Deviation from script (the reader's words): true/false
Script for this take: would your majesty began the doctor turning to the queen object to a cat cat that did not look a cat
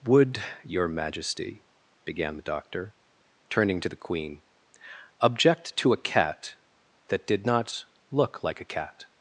true